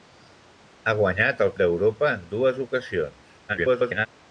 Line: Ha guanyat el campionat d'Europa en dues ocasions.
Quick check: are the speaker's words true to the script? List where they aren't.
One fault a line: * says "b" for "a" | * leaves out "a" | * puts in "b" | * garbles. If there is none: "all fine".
* leaves out "campionat"
* garbles